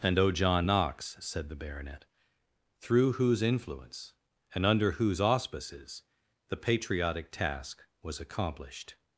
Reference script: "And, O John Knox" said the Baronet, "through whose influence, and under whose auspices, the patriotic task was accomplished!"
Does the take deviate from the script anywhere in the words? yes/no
no